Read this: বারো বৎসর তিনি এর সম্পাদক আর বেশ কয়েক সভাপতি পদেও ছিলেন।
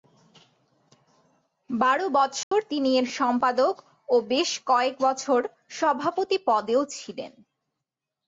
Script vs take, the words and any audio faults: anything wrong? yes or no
yes